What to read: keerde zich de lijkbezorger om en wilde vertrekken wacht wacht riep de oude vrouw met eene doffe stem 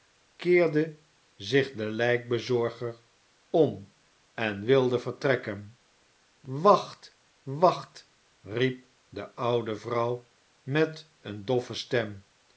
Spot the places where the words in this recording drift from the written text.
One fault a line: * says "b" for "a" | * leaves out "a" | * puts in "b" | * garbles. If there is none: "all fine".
all fine